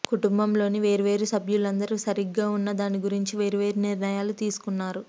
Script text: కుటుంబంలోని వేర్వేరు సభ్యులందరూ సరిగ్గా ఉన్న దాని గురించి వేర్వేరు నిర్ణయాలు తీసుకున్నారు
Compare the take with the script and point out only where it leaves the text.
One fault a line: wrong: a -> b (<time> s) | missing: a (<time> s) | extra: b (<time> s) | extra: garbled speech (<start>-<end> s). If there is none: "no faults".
no faults